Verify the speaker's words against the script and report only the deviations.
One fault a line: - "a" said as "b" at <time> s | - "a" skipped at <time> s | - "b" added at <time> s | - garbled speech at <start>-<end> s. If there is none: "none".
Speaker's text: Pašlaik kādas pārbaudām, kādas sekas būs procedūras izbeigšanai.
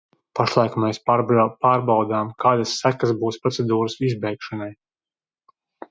- "kādas" said as "mēs" at 0.8 s